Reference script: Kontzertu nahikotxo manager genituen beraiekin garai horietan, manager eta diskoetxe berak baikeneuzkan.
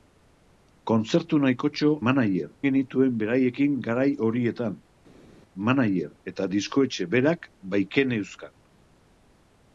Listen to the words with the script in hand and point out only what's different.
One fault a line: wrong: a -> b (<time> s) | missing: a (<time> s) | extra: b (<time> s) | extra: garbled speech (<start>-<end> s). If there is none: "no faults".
no faults